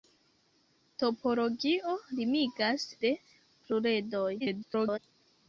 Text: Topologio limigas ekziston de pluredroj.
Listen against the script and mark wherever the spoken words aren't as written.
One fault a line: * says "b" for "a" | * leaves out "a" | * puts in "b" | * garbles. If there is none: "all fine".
* leaves out "ekziston"
* garbles